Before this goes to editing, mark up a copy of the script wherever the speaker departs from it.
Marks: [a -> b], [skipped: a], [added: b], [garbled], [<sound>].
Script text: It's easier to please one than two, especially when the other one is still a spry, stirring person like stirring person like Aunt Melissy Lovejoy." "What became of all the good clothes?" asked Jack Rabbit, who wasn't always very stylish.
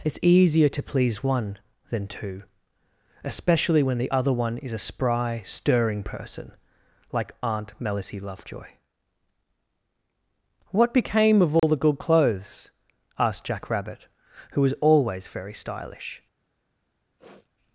It's easier to please one than two, especially when the other one is [skipped: still] a spry, stirring person like [skipped: stirring person like] Aunt Melissy Lovejoy." "What became of all [dropout] the good clothes?" asked Jack Rabbit, who [wasn't -> was] always very stylish. [sniff]